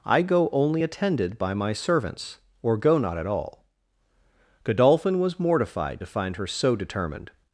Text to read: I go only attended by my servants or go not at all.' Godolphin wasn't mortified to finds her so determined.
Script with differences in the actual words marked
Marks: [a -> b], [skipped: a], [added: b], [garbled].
I go only attended by my servants or go not at all.' Godolphin [wasn't -> was] mortified to [finds -> find] her so determined.